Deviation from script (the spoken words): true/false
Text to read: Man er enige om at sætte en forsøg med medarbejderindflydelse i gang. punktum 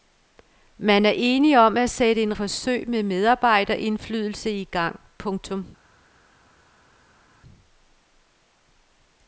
false